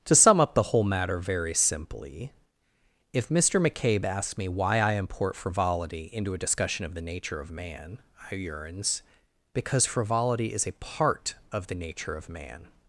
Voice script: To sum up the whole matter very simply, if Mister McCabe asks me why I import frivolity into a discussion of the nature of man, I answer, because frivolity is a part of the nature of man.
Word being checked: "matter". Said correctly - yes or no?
yes